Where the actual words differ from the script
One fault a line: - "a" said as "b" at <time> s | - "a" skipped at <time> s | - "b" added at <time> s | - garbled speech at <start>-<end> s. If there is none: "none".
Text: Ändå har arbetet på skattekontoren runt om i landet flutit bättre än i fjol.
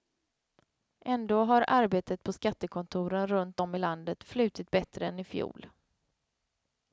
none